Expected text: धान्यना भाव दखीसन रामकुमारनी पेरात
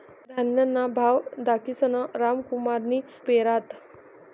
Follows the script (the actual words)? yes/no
yes